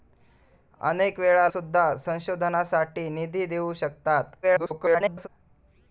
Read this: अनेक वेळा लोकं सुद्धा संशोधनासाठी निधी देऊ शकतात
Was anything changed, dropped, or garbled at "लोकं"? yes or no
yes